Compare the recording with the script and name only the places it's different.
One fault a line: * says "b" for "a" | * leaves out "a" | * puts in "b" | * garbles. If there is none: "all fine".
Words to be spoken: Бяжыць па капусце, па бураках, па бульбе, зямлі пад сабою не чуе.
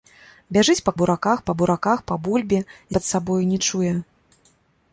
* says "бураках" for "капусце"
* leaves out "зямлі"